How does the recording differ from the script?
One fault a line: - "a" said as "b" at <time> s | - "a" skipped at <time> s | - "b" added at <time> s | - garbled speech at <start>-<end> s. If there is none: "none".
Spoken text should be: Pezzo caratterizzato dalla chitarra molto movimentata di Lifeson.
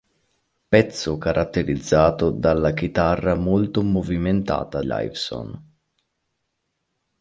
- "di" skipped at 4.8 s